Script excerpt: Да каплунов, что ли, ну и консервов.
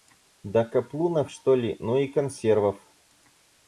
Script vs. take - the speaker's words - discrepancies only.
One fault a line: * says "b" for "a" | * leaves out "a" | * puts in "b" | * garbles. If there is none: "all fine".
all fine